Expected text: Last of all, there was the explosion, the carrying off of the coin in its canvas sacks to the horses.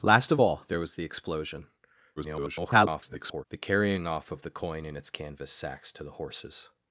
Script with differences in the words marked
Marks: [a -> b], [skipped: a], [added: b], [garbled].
Last of all, there was the explosion, [garbled] the carrying off of the coin in its canvas sacks to the horses.